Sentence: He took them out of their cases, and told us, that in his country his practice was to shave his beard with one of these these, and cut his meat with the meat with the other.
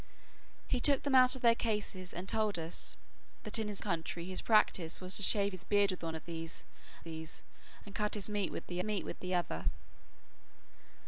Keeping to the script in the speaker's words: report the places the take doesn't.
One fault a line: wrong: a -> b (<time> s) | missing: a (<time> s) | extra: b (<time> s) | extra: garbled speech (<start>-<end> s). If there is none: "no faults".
no faults